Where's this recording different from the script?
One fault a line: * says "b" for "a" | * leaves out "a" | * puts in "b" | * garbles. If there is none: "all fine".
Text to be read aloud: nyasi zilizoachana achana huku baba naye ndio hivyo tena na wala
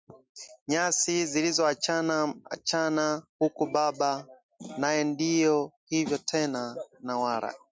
all fine